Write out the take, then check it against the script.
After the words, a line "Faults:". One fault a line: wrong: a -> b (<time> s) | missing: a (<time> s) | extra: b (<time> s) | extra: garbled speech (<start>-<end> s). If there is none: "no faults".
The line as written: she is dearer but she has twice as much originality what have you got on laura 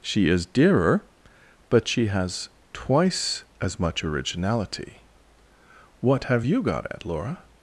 she is dearer but she has twice as much originality what have you got at laura
Faults:
wrong: on -> at (6.9 s)